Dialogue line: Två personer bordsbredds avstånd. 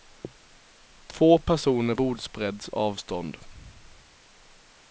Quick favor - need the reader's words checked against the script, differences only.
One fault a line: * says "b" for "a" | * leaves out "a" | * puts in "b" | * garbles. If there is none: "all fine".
all fine